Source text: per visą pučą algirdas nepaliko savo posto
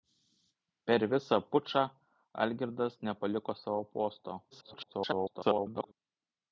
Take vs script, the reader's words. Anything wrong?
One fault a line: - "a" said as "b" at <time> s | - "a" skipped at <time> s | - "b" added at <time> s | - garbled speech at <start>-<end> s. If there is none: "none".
- garbled speech at 4.5-5.9 s